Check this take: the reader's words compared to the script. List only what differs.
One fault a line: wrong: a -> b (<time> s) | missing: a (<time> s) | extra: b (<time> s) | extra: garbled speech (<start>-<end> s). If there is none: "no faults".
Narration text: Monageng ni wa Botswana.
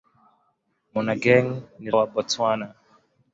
no faults